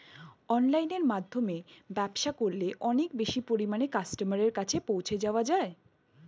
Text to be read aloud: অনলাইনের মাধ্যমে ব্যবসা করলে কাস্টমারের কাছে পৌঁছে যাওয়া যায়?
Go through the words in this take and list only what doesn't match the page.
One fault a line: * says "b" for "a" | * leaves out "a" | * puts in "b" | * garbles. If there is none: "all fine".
* puts in "অনেক বেশি পরিমাণে"